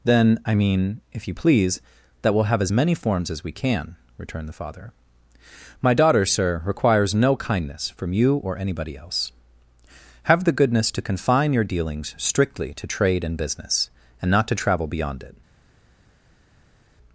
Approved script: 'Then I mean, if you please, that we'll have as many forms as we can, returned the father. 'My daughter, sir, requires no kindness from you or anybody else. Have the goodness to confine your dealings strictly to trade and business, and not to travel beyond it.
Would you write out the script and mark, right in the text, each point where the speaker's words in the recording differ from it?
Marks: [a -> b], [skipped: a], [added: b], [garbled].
'Then I mean, if you please, that we'll have as many forms as we can, returned the father. 'My daughter, sir, requires no kindness from you or anybody else. Have the goodness to confine your dealings strictly to trade and business, and not to travel beyond it.